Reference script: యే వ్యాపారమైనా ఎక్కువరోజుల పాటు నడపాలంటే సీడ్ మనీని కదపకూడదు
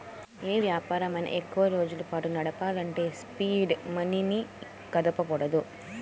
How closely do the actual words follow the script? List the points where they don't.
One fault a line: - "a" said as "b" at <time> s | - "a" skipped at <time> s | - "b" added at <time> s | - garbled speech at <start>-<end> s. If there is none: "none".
none